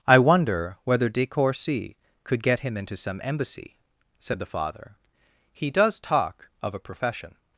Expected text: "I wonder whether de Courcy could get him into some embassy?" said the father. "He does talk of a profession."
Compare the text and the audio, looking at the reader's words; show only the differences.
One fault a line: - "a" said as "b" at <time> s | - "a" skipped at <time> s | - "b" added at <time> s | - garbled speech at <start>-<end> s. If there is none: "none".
none